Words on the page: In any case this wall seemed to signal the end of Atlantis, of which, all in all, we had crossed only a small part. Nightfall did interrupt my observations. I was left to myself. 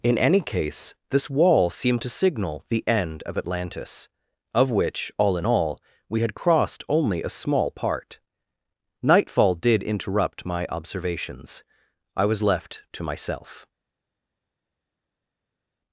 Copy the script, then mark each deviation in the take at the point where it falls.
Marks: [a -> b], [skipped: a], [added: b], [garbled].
In any case this wall seemed to signal the end of Atlantis, of which, all in all, we had crossed only a small part. Nightfall did interrupt my observations. I was left to myself.